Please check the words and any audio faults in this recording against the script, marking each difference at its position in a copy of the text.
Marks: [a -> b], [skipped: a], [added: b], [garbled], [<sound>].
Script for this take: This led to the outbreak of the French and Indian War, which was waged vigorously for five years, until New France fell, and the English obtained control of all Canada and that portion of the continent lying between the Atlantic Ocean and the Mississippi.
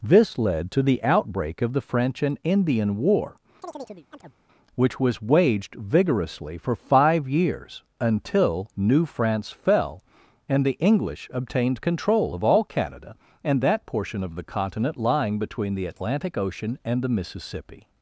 This led to the outbreak of the French and Indian War, [chirp] which was waged vigorously for five years, until New France fell, and the English obtained control of all Canada and that portion of the continent lying between the Atlantic Ocean and the Mississippi.